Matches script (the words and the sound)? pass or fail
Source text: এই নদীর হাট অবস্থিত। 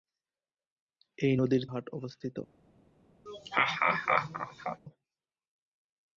fail